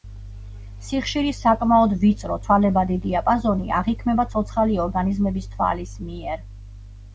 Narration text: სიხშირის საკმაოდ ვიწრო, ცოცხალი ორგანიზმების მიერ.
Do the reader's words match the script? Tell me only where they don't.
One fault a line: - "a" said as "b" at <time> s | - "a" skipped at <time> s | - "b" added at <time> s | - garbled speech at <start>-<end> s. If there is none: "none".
- "ცვალებადი დიაპაზონი აღიქმება" added at 2.5 s
- "თვალის" added at 5.6 s